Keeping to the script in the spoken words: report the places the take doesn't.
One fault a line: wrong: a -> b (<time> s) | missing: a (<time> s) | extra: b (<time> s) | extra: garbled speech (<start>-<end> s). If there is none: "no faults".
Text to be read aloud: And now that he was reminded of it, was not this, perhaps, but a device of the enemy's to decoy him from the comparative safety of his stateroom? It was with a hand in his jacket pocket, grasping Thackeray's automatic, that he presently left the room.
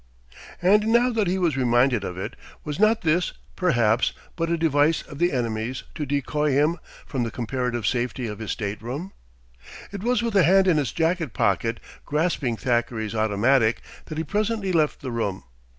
no faults